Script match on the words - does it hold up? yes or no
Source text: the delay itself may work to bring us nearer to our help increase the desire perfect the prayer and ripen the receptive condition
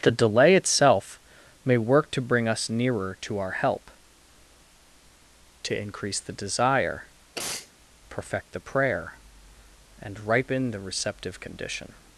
no